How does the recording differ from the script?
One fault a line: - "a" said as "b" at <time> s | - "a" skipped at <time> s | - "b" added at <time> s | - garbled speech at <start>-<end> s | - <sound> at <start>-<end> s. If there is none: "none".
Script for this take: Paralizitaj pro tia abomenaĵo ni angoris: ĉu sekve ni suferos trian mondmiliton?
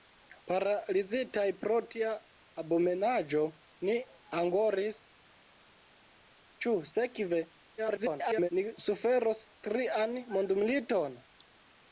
- garbled speech at 7.8-8.5 s